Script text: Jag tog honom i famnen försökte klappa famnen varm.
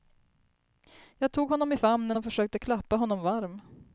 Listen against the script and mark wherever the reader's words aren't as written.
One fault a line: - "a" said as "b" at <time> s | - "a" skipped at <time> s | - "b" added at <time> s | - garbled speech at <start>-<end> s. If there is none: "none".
- "och" added at 2.1 s
- "famnen" said as "honom" at 3.0 s